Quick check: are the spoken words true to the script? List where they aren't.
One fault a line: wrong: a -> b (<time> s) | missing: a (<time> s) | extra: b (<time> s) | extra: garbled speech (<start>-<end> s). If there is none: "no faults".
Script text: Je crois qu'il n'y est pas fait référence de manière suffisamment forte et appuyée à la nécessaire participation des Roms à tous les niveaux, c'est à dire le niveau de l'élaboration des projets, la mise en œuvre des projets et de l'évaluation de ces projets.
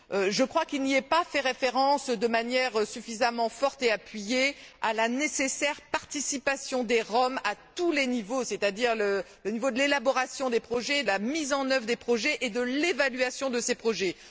no faults